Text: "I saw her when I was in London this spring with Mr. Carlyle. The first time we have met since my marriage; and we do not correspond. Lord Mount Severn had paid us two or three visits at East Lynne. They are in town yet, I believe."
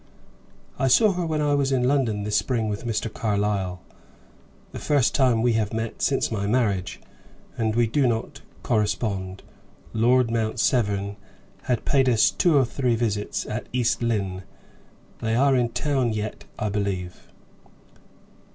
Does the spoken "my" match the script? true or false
true